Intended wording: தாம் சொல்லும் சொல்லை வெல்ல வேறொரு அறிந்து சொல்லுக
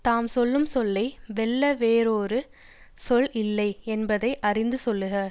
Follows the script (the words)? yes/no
no